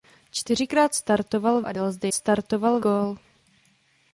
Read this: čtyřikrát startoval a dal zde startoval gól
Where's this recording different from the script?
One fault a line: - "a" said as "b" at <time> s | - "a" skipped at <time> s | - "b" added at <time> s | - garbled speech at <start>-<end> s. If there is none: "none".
none